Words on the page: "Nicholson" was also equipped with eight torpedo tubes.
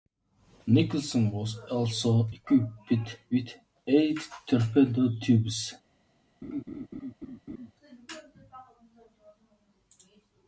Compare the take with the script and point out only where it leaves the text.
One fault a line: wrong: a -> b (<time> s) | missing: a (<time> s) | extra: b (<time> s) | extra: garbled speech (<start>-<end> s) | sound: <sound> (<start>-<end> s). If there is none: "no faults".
sound: laugh (6.4-7.7 s)